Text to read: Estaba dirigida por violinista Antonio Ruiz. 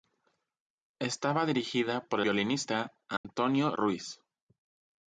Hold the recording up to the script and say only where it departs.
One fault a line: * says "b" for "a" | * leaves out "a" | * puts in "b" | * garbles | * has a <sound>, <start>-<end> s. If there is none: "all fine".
* has a dropout, 3.2-3.2 s